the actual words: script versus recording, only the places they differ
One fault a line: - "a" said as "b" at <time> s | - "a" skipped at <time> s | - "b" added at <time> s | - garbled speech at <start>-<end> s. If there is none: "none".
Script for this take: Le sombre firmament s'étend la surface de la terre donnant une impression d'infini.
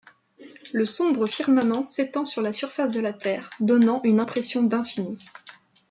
- "sur" added at 2.2 s